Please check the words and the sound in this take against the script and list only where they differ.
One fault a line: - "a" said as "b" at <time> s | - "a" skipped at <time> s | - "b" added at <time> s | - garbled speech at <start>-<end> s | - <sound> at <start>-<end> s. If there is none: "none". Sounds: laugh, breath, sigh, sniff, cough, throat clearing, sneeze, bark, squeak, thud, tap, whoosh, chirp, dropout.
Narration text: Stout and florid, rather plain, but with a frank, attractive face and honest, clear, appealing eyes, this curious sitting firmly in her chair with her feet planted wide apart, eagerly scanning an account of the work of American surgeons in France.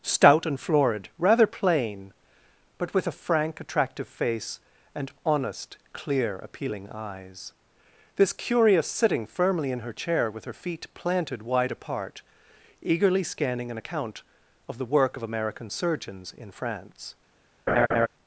- laugh at 17.7-18.1 s